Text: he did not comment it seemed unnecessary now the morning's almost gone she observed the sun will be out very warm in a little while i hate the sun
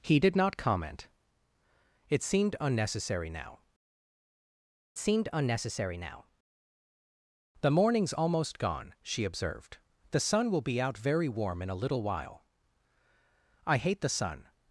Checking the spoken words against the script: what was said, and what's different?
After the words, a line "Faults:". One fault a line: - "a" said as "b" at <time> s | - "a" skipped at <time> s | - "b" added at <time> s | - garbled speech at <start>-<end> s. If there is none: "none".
he did not comment it seemed unnecessary now seemed unnecessary now the morning's almost gone she observed the sun will be out very warm in a little while i hate the sun
Faults:
- "seemed unnecessary now" added at 5.0 s